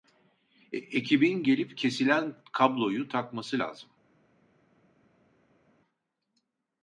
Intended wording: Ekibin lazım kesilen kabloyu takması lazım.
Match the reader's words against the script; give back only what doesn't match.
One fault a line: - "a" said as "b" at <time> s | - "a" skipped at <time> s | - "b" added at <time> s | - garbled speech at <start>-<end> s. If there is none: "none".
- "lazım" said as "gelip" at 1.4 s